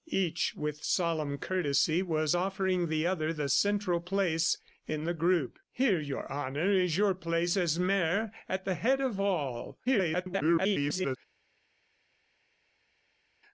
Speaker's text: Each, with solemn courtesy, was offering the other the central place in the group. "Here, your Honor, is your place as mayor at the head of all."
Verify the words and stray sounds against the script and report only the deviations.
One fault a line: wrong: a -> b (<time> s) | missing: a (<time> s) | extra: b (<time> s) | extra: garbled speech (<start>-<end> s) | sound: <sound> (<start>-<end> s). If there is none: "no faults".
extra: garbled speech (9.8-11.2 s)